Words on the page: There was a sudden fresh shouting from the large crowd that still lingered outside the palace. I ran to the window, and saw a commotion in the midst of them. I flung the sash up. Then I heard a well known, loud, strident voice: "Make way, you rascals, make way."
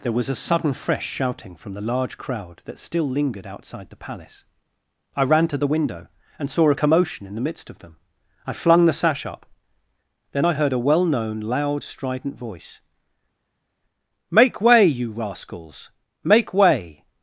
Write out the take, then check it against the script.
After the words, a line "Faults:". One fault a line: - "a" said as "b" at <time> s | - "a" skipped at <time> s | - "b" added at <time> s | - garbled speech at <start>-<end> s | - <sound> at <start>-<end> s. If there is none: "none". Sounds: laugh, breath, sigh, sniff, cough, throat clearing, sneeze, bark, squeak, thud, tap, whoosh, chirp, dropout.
There was a sudden fresh shouting from the large crowd that still lingered outside the palace. I ran to the window, and saw a commotion in the midst of them. I flung the sash up. Then I heard a well known, loud, strident voice: "Make way, you rascals, make way."
Faults:
none